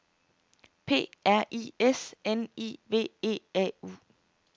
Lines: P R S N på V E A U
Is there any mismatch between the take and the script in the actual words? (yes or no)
yes